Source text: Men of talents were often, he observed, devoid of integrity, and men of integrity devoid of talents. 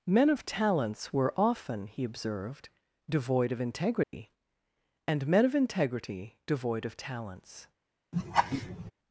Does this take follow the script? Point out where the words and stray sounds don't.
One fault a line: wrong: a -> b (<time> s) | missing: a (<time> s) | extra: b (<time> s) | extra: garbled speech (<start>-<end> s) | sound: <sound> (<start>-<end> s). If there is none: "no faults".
sound: dropout (4.0-4.1 s)
sound: laugh (8.1-8.9 s)